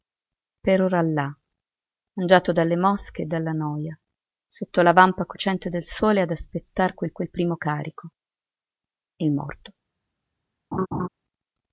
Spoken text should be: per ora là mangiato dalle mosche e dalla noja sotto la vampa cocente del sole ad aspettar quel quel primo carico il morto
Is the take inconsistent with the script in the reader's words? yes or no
no